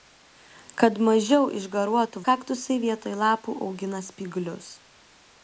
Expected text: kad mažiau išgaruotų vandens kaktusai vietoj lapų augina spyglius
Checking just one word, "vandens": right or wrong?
wrong